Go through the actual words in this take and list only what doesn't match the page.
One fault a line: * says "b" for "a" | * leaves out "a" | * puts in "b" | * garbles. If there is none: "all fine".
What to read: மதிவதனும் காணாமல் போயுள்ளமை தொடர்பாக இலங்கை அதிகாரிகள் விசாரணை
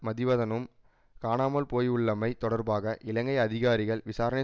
all fine